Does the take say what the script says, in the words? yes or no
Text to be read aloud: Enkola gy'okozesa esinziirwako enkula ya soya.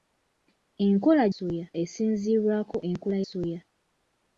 no